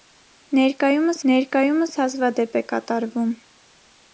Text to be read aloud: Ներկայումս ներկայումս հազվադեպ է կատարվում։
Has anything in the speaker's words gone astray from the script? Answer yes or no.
no